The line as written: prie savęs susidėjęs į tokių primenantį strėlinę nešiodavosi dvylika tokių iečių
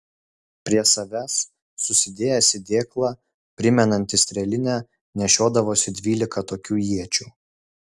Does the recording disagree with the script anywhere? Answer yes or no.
yes